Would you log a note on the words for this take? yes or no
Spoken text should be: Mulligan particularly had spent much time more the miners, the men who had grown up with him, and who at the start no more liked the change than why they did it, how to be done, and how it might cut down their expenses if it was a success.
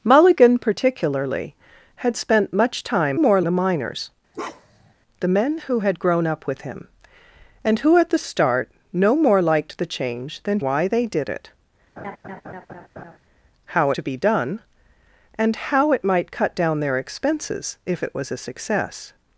no